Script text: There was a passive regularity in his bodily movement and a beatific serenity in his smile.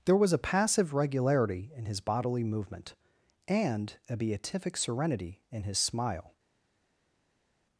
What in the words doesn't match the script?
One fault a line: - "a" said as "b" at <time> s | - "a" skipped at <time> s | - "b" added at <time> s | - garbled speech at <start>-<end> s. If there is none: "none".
none